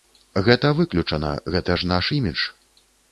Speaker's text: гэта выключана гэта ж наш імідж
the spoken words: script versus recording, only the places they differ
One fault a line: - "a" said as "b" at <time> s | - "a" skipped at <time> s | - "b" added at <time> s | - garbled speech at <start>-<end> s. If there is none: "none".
none